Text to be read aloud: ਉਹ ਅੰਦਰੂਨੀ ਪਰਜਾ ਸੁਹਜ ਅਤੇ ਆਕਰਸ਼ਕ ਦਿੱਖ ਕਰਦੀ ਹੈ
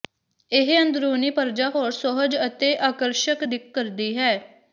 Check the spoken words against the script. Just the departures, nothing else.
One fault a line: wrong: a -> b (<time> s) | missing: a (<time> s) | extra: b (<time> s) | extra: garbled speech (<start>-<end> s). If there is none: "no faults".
wrong: ਉਹ -> ਇਹ (0.5 s)
extra: ਹੋਰ (1.7 s)